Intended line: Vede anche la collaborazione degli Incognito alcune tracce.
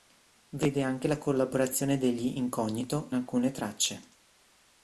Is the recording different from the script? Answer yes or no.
no